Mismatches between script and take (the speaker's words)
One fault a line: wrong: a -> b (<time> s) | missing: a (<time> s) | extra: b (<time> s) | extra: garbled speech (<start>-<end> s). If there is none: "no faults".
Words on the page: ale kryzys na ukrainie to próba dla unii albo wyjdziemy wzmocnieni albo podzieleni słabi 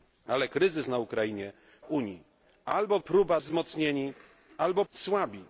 missing: to próba dla (1.5 s)
wrong: wyjdziemy -> próba (3.0 s)
missing: podzieleni (4.8 s)